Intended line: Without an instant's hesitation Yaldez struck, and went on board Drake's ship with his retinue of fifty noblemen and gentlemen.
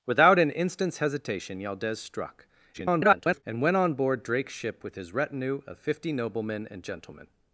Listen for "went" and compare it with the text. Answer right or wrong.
right